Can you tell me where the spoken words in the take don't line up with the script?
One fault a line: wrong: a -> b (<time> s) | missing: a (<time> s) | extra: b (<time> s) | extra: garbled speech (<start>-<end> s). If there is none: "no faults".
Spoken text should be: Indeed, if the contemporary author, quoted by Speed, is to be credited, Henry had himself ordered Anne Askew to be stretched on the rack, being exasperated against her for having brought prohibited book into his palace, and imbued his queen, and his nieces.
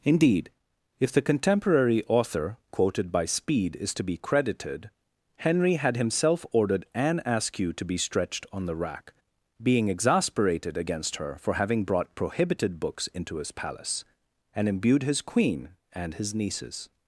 wrong: book -> books (12.8 s)